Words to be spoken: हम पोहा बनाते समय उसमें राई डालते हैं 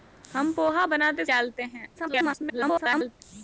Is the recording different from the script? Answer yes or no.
yes